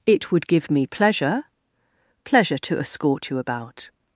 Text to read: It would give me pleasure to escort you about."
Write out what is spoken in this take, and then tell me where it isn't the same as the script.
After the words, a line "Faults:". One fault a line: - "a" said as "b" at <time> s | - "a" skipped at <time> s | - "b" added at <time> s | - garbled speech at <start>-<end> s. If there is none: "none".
It would give me pleasure pleasure to escort you about."
Faults:
- "pleasure" added at 2.2 s